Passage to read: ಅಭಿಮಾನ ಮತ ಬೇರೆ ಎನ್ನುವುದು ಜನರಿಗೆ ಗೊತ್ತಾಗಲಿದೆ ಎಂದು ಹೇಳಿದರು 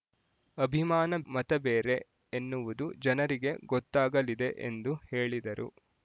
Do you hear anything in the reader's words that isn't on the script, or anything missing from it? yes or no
no